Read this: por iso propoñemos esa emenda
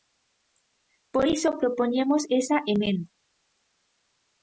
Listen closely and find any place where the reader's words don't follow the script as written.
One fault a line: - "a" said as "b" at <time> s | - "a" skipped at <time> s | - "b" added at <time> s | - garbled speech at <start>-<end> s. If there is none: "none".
none